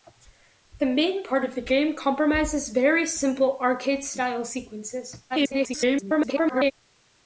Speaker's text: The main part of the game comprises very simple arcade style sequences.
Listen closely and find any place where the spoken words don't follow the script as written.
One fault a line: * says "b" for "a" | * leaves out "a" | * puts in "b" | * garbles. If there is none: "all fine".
* garbles